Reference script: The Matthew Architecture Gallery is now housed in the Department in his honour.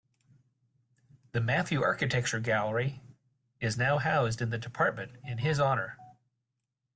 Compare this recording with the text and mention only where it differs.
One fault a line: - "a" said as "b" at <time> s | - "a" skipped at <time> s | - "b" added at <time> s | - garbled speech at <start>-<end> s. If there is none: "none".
none